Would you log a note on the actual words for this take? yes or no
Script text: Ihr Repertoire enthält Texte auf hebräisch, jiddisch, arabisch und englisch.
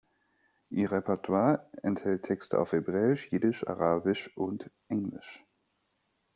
no